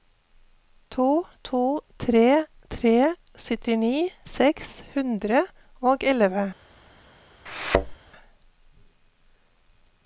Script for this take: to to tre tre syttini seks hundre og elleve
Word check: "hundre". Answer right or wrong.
right